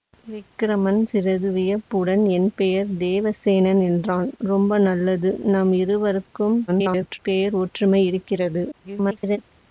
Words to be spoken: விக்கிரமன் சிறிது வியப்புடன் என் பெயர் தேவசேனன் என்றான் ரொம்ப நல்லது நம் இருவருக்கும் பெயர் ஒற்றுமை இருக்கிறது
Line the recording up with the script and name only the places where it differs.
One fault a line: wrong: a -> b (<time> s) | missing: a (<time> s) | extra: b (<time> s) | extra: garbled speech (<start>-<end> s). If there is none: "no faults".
extra: garbled speech (6.7-7.2 s)
extra: garbled speech (8.7-9.4 s)